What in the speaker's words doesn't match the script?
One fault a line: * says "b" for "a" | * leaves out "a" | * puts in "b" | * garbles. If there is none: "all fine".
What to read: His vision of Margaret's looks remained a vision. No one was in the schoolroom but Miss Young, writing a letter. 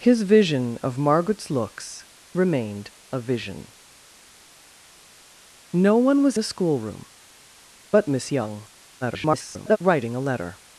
* leaves out "in"
* garbles